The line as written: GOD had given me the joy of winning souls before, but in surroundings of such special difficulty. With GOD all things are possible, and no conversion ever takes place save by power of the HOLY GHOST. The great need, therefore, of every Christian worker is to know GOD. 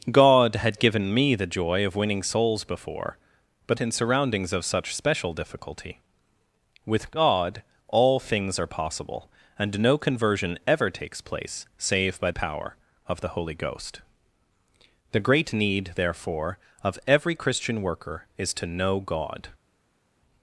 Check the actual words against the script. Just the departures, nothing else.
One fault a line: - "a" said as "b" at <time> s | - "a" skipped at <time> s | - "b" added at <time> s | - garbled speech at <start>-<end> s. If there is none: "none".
none